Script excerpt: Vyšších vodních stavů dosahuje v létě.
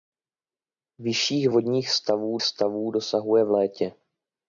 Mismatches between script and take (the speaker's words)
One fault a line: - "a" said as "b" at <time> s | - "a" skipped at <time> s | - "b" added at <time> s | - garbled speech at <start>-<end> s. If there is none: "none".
- "stavů" added at 2.4 s